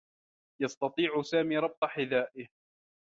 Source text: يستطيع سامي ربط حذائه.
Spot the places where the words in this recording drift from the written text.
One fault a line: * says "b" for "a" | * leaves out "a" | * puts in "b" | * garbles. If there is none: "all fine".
all fine